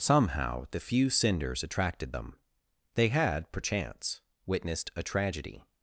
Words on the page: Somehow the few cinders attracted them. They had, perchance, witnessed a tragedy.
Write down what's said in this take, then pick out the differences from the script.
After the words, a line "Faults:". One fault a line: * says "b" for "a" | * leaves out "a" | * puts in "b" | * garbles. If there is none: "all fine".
Somehow the few cinders attracted them. They had, perchance, witnessed a tragedy.
Faults:
all fine